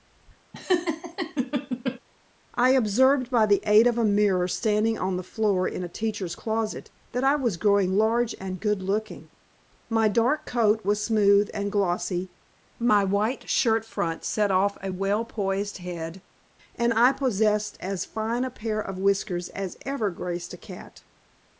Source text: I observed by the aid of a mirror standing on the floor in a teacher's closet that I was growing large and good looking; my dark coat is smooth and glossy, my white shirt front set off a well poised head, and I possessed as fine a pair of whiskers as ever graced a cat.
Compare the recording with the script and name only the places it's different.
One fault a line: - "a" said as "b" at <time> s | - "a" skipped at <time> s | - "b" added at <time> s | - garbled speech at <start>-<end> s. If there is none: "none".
- "is" said as "was" at 10.8 s